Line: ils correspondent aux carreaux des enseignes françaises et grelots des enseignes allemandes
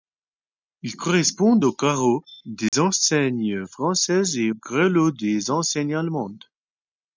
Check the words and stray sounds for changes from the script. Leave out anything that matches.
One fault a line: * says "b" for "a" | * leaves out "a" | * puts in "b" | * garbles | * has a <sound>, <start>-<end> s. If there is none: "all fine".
* has a dropout, 2.7-2.7 s